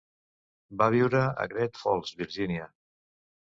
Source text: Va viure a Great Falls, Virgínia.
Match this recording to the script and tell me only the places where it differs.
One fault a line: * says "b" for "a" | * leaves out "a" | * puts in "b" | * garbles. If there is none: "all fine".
all fine